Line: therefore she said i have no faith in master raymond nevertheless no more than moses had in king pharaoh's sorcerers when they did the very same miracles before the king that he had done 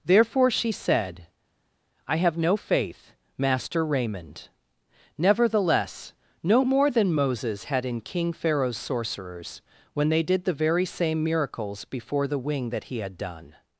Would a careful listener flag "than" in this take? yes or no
no